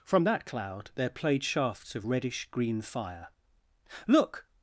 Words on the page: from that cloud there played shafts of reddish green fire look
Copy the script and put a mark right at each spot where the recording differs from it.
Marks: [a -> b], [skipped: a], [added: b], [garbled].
from that cloud there played shafts of reddish green fire look